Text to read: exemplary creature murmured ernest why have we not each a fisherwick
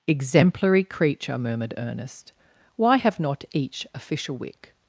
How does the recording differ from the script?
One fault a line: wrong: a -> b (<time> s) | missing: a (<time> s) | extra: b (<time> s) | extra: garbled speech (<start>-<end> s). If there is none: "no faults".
missing: we (3.2 s)